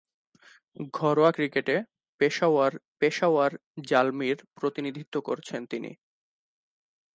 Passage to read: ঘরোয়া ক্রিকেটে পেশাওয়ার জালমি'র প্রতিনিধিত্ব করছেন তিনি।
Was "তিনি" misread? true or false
false